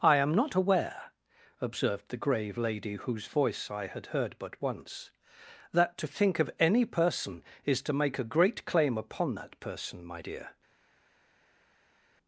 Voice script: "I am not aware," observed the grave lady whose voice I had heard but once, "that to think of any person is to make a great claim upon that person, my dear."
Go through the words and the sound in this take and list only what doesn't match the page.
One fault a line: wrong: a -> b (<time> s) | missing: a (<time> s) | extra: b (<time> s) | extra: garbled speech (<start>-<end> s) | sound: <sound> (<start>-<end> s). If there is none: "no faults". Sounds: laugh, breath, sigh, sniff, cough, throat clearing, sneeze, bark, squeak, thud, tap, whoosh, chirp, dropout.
no faults